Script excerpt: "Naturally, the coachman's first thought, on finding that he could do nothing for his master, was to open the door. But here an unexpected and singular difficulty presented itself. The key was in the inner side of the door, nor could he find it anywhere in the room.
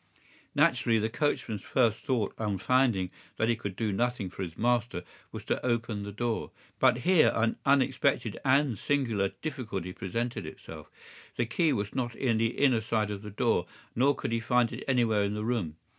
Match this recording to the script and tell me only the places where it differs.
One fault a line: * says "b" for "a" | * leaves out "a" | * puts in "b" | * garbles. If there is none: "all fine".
* puts in "not"